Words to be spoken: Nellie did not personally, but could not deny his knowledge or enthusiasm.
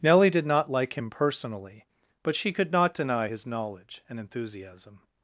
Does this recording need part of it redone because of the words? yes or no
yes